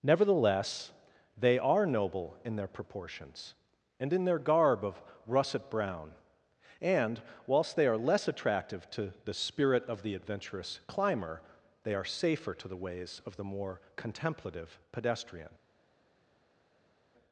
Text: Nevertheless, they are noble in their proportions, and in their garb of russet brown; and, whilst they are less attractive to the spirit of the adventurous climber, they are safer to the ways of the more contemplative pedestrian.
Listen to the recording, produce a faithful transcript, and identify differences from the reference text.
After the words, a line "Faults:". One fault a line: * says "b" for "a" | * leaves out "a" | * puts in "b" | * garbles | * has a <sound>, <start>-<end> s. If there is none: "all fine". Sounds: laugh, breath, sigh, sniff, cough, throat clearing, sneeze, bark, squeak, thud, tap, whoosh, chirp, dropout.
Nevertheless, they are noble in their proportions, and in their garb of russet brown; and, whilst they are less attractive to the spirit of the adventurous climber, they are safer to the ways of the more contemplative pedestrian.
Faults:
all fine